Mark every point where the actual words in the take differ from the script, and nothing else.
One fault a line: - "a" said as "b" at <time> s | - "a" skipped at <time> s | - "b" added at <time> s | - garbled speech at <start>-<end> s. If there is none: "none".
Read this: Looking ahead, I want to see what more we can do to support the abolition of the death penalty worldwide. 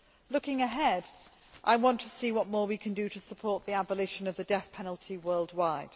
none